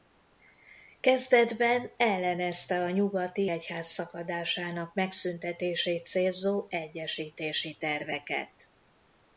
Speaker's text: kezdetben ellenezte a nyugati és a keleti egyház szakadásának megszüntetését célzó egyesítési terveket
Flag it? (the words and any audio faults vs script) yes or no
yes